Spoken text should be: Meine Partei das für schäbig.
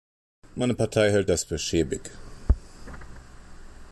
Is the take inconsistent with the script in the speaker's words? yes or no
yes